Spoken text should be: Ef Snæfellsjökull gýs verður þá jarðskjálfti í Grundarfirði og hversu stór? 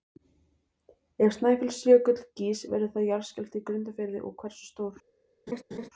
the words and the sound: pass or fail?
fail